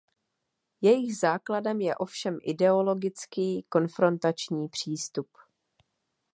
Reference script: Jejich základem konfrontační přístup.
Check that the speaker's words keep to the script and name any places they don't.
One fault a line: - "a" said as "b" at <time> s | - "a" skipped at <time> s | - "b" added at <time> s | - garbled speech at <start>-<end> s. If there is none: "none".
- "je ovšem ideologický" added at 1.8 s